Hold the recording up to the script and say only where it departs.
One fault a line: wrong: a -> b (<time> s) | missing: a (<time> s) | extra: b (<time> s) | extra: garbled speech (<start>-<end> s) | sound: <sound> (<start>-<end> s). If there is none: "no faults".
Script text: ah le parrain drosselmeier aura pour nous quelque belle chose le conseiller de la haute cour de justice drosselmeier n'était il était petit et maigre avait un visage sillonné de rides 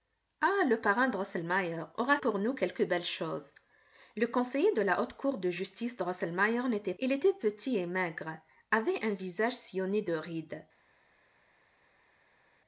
no faults